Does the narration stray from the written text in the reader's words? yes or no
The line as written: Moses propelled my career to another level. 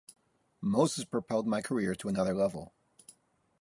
no